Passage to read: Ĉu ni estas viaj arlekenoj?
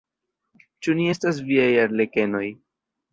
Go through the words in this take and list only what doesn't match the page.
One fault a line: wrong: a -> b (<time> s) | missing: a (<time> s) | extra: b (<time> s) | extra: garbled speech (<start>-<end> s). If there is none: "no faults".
no faults